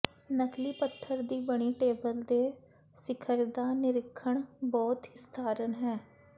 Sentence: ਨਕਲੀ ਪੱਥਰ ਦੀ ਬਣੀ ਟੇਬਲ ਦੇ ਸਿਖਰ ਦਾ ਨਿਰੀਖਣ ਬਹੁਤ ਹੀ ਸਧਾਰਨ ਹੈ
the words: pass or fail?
fail